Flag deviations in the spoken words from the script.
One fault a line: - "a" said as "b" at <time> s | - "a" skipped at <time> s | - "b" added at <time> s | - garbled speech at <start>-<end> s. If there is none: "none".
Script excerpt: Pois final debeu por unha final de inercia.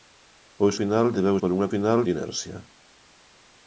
none